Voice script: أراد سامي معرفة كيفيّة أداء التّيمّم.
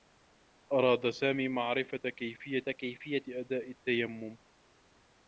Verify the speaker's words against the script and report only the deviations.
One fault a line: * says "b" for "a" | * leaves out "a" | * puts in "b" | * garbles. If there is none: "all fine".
* puts in "كيفيّة"